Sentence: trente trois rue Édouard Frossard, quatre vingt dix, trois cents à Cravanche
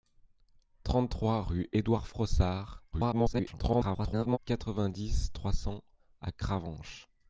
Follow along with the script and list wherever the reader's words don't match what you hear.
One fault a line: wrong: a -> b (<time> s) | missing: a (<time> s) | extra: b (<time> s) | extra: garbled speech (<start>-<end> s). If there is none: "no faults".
extra: garbled speech (2.9-4.4 s)